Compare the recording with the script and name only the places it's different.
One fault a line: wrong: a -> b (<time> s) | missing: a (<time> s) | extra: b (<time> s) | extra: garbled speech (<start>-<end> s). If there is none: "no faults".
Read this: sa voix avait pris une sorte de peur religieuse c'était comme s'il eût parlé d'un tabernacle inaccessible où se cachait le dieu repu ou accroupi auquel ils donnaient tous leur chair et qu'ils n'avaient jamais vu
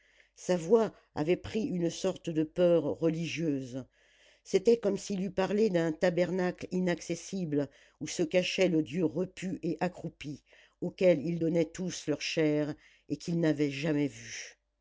wrong: ou -> et (9.6 s)